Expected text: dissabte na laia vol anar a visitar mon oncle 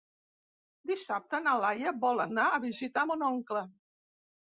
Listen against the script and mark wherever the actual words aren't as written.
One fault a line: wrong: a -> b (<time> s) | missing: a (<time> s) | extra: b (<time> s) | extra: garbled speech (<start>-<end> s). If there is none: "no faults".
no faults